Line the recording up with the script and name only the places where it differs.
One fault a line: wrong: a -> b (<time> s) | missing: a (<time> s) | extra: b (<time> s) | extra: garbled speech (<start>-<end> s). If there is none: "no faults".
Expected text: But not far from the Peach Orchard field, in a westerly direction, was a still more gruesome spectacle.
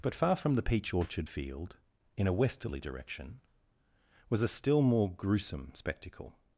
missing: not (0.1 s)